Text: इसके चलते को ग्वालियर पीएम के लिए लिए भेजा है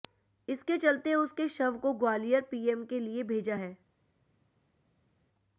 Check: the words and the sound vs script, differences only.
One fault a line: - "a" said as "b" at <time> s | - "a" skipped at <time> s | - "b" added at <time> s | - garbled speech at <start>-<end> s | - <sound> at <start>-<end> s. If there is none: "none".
- "उसके शव" added at 1.1 s
- "लिए" skipped at 3.2 s